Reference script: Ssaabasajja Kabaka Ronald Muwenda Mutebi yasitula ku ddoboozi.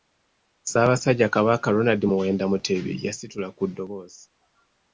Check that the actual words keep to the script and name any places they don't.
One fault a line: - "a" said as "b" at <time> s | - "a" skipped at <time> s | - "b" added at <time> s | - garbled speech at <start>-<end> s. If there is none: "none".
none